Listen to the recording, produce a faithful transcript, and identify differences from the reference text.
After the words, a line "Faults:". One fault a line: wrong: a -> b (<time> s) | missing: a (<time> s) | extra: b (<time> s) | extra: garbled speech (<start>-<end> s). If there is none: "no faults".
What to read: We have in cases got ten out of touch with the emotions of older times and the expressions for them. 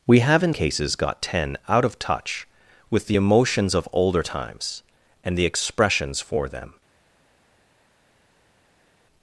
We have in cases got ten out of touch with the emotions of older times and the expressions for them.
Faults:
no faults